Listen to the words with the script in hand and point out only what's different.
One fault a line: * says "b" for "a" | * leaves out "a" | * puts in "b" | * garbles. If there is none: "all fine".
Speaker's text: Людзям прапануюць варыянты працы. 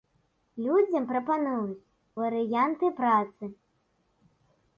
all fine